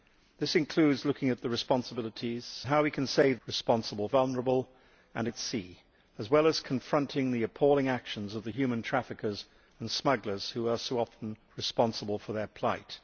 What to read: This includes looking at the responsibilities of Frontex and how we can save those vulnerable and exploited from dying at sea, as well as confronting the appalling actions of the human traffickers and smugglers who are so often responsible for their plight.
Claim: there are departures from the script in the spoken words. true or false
true